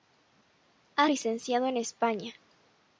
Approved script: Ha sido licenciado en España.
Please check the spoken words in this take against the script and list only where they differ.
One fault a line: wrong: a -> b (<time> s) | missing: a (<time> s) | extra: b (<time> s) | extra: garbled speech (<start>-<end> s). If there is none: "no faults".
missing: sido (1.1 s)